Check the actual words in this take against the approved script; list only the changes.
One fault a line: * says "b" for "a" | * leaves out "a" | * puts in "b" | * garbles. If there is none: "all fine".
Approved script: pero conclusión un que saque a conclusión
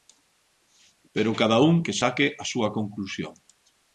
* says "cada" for "conclusión"
* puts in "súa"